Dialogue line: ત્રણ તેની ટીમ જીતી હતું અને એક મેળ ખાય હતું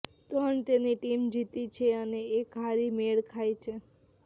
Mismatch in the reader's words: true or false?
true